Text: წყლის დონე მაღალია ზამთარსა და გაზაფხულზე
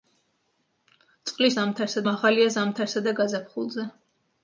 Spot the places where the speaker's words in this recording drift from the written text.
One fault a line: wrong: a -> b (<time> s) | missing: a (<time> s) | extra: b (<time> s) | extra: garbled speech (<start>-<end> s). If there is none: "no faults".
wrong: დონე -> ზამთარსა (1.6 s)